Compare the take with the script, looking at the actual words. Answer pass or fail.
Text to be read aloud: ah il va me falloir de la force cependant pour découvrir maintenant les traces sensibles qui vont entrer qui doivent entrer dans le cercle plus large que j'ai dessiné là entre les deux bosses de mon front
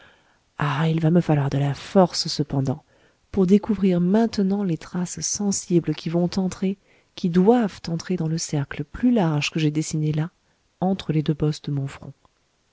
pass